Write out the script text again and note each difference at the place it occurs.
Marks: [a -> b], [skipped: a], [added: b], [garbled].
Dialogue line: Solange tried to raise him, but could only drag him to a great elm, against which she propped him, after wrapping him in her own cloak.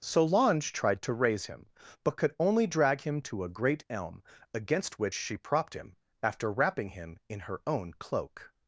Solange tried to raise him, but could only drag him to a great elm, against which she propped him, after wrapping him in her own cloak.